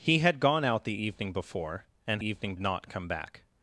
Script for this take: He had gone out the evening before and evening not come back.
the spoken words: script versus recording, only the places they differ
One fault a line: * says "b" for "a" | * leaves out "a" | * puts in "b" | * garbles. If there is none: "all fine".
all fine